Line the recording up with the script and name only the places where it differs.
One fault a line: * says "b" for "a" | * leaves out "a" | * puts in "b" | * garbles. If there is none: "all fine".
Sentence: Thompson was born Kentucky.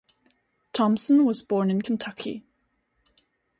* puts in "in"